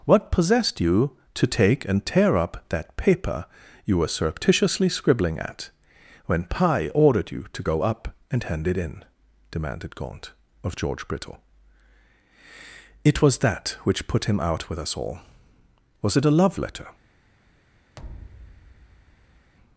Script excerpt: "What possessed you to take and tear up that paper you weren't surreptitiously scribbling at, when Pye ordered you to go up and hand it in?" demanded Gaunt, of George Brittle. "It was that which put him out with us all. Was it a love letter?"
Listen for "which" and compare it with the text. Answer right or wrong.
right